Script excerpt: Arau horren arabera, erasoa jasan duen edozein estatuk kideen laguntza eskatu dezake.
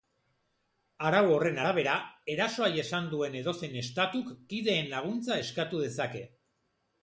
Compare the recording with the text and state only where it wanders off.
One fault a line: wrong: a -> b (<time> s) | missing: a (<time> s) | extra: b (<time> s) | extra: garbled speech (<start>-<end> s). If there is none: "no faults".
no faults